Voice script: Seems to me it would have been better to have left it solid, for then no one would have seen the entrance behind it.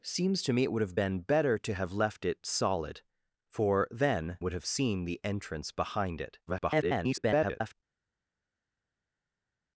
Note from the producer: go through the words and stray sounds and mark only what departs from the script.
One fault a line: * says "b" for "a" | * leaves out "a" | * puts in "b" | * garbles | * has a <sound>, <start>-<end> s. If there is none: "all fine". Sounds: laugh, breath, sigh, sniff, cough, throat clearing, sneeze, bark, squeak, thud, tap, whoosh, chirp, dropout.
* leaves out "no one"
* garbles